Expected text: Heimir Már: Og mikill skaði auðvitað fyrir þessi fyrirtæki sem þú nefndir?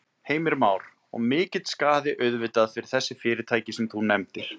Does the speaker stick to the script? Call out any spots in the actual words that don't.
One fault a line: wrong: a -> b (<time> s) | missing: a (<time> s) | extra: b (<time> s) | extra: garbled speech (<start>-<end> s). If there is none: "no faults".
no faults